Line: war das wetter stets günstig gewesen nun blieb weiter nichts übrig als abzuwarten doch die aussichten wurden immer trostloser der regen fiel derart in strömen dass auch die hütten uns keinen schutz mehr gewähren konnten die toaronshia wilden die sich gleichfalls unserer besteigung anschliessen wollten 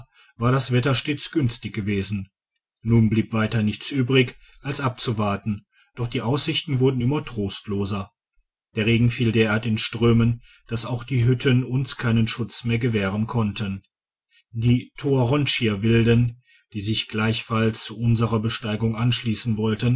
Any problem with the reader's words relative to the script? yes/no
no